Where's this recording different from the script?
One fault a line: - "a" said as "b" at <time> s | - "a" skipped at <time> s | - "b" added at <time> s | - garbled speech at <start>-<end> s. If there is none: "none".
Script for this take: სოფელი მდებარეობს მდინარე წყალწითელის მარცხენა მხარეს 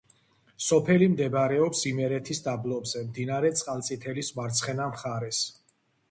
- "იმერეთის დაბლობზე" added at 1.9 s